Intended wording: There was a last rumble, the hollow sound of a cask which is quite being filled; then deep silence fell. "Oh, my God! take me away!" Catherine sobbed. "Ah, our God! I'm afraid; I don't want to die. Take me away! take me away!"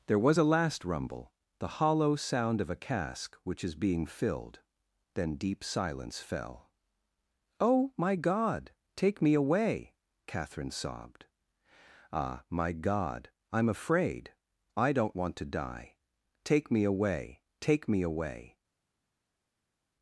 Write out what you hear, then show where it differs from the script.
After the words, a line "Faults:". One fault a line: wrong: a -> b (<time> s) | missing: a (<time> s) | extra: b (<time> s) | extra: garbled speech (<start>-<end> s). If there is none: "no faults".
There was a last rumble, the hollow sound of a cask which is being filled; then deep silence fell. "Oh, my God! take me away!" Catherine sobbed. "Ah, my God! I'm afraid; I don't want to die. Take me away! take me away!"
Faults:
missing: quite (3.8 s)
wrong: our -> my (12.5 s)